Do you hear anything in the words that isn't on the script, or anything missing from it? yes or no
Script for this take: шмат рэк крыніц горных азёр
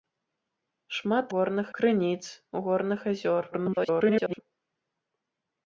yes